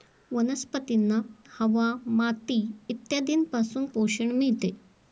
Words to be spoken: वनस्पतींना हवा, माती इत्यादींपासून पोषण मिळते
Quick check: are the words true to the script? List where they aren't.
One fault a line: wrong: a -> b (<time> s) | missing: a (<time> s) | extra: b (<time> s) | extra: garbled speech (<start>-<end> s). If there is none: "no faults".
no faults